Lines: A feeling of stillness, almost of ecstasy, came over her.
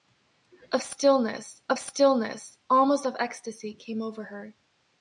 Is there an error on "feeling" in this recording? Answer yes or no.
yes